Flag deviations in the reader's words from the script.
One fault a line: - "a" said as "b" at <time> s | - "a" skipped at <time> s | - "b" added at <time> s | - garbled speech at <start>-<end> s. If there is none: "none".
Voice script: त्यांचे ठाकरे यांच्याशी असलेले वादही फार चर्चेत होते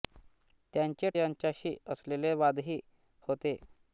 - "ठाकरे" skipped at 1.1 s
- "फार चर्चेत" skipped at 2.8 s